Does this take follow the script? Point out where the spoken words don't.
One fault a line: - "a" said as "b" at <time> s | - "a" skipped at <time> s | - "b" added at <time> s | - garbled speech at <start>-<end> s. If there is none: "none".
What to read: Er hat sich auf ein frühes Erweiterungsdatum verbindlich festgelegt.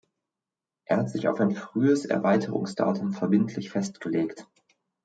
none